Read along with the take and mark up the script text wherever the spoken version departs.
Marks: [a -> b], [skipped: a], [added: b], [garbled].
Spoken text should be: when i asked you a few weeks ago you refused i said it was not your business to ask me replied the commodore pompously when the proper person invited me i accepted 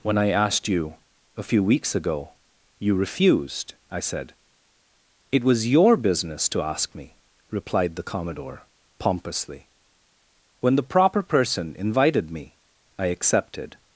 when i asked you a few weeks ago you refused i said it was [skipped: not] your business to ask me replied the commodore pompously when the proper person invited me i accepted